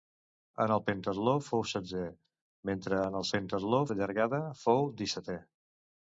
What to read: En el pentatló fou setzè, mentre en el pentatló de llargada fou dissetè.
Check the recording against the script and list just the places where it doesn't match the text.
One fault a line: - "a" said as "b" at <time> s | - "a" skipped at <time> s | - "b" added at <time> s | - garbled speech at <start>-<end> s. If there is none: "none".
none